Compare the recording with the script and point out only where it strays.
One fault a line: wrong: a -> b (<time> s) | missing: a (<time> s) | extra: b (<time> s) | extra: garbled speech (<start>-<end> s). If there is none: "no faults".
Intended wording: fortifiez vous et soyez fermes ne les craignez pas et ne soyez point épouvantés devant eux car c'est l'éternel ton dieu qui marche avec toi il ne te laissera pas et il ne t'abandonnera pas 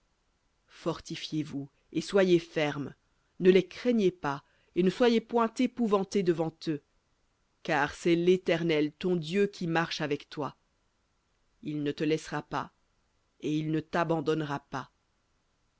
no faults